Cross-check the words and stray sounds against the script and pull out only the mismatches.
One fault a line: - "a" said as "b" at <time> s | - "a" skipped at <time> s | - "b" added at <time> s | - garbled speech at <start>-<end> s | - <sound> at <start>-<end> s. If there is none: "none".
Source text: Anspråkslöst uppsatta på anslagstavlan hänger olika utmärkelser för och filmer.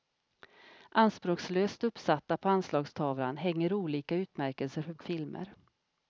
none